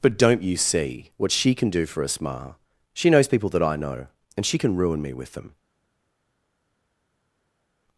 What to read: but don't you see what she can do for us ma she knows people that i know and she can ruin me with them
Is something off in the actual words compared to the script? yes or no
no